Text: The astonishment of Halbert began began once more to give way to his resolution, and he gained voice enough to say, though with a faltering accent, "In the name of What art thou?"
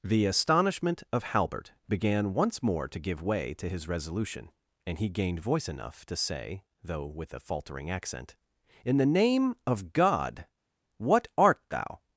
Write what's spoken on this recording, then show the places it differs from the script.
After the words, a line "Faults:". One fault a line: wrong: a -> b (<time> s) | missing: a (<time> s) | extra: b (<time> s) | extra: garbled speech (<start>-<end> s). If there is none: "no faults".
The astonishment of Halbert began once more to give way to his resolution, and he gained voice enough to say, though with a faltering accent, "In the name of God, what art thou?"
Faults:
missing: began (2.3 s)
extra: God (9.9 s)